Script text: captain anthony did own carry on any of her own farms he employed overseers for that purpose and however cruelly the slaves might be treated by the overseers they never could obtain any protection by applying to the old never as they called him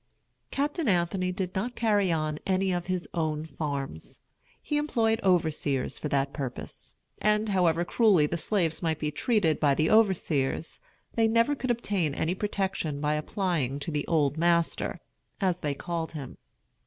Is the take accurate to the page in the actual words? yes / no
no